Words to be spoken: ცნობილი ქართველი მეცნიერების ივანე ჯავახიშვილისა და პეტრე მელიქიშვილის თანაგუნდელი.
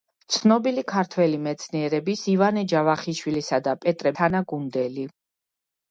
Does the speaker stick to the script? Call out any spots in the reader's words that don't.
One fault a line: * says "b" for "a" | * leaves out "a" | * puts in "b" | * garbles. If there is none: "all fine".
* leaves out "მელიქიშვილის"